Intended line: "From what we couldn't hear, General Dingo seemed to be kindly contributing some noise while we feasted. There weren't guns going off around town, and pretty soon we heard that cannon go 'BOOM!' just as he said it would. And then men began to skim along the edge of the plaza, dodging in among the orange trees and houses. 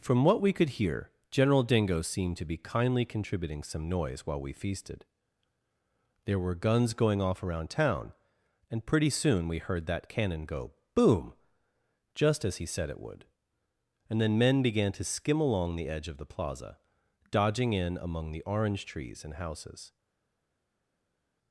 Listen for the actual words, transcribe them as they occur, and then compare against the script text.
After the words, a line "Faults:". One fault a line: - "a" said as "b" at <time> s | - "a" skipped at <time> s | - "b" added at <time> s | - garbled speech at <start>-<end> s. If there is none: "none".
"From what we could hear, General Dingo seemed to be kindly contributing some noise while we feasted. There were guns going off around town, and pretty soon we heard that cannon go 'BOOM!' just as he said it would. And then men began to skim along the edge of the plaza, dodging in among the orange trees and houses.
Faults:
- "couldn't" said as "could" at 0.5 s
- "weren't" said as "were" at 6.4 s